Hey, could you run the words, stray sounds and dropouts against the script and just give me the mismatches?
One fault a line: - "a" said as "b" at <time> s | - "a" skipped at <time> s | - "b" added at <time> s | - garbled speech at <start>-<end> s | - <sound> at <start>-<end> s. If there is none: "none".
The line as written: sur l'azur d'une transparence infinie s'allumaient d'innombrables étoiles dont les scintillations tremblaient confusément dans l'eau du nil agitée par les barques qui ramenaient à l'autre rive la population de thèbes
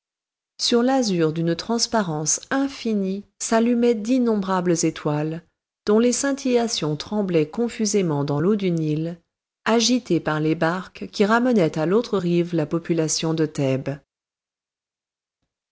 none